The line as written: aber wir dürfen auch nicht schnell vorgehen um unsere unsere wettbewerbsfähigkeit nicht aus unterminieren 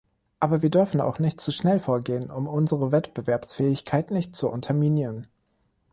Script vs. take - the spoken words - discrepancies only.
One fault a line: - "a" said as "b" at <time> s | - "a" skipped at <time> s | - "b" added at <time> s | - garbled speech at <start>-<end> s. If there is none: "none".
- "zu" added at 1.4 s
- "unsere" skipped at 2.9 s
- "aus" said as "zu" at 4.3 s